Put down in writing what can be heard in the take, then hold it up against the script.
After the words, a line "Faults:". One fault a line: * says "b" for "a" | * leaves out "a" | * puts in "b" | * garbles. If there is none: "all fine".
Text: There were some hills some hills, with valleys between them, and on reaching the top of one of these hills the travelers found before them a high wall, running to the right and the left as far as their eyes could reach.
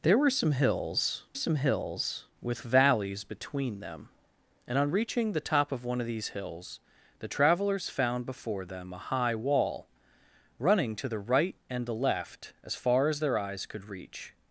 There were some hills some hills, with valleys between them, and on reaching the top of one of these hills the travelers found before them a high wall, running to the right and the left as far as their eyes could reach.
Faults:
all fine